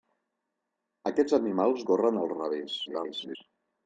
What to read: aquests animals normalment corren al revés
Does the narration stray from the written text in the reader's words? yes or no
yes